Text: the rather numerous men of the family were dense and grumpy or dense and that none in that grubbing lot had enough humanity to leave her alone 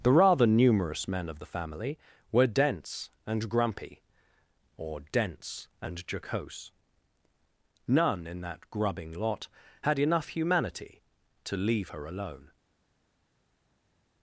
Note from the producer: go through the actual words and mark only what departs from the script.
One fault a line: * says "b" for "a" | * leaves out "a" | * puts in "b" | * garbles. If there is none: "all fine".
* says "jocose" for "that"